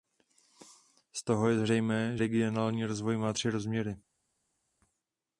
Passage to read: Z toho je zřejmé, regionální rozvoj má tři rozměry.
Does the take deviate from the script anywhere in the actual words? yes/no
no